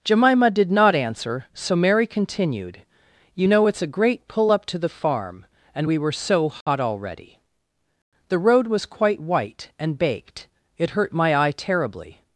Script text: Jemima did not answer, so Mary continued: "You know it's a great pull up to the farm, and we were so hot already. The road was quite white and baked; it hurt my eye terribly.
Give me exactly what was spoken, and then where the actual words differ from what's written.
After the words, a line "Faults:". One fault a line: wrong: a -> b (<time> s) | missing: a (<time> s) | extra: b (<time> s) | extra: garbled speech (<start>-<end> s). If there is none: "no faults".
Jemima did not answer, so Mary continued: "You know it's a great pull up to the farm, and we were so hot already. The road was quite white and baked; it hurt my eye terribly.
Faults:
no faults